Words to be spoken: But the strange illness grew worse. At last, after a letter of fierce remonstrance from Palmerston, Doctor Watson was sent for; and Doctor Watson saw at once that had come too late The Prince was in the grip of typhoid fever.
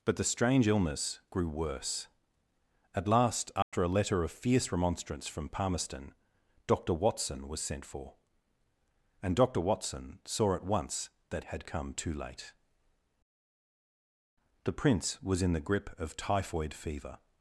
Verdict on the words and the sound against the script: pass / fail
fail